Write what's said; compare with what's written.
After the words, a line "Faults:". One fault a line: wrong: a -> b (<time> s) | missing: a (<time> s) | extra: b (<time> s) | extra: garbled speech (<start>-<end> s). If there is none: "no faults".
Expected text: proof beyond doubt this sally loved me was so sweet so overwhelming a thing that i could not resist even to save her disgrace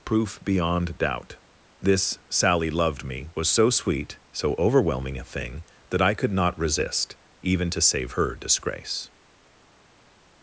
proof beyond doubt this sally loved me was so sweet so overwhelming a thing that i could not resist even to save her disgrace
Faults:
no faults